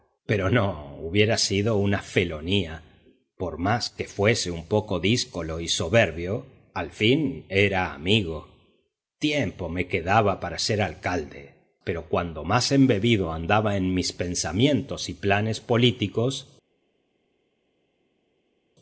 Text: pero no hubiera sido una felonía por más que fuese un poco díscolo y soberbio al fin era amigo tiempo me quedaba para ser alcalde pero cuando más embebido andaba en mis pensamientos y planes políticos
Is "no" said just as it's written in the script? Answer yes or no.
yes